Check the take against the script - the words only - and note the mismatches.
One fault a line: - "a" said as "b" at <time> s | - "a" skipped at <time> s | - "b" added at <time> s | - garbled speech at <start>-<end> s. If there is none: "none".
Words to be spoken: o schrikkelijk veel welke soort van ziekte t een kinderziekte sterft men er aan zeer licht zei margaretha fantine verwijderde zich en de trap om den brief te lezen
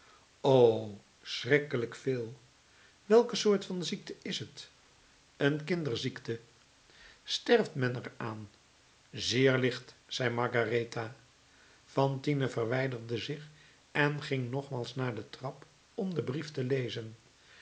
- "is" added at 4.2 s
- "ging nogmaals naar" added at 14.2 s